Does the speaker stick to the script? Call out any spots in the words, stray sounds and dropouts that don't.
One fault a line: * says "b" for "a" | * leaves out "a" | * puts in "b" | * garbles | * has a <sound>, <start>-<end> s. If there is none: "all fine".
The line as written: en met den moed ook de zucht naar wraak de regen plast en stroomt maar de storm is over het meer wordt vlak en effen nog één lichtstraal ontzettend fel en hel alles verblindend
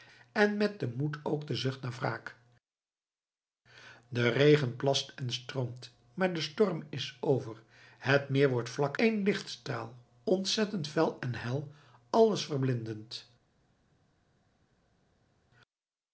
* leaves out "en effen nog"